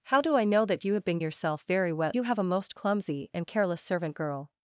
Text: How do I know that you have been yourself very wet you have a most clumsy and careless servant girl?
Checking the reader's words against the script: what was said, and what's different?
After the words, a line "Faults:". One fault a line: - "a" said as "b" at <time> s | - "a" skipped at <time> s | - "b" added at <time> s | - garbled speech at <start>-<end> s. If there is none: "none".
How do I know that you have been yourself very wet you have a most clumsy and careless servant girl?
Faults:
none